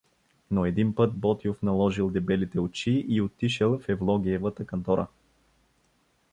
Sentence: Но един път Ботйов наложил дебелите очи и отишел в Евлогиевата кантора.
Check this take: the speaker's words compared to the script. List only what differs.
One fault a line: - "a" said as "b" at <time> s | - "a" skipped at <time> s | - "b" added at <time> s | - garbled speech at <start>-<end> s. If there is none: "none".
none